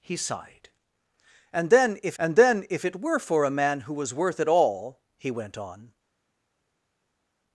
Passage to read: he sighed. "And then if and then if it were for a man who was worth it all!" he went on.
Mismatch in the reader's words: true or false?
false